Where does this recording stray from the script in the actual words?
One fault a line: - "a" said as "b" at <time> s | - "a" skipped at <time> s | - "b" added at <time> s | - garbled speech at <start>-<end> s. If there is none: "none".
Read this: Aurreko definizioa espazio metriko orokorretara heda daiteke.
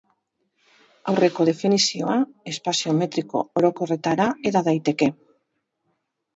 none